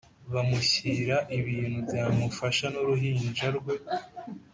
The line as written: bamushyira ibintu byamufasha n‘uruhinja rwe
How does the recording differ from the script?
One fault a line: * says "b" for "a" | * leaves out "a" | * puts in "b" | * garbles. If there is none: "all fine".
all fine